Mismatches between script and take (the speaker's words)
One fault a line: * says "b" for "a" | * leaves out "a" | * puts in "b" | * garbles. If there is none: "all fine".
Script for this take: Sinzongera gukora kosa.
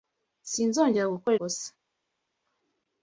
all fine